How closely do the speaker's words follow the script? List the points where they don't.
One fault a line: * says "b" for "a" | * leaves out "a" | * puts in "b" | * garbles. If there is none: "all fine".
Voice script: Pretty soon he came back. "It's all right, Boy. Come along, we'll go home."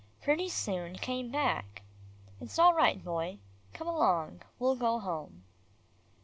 * leaves out "he"